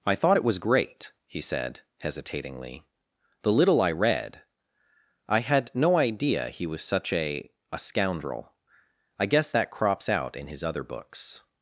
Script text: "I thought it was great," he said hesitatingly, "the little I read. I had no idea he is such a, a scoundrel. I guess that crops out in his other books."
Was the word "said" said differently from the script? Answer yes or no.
no